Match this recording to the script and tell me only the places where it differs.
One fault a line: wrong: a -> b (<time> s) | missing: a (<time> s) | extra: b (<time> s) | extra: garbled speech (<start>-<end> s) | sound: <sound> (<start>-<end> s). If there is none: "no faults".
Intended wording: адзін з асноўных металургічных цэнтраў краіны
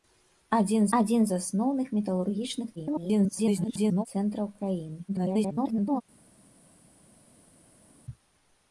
extra: адзін (1.0 s)
extra: garbled speech (2.8-4.1 s)
extra: garbled speech (5.1-6.0 s)